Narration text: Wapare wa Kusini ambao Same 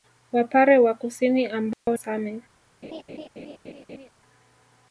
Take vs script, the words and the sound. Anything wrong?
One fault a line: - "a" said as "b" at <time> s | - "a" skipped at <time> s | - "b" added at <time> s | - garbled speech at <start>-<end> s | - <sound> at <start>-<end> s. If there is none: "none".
- dropout at 1.7-1.9 s
- laugh at 2.8-4.1 s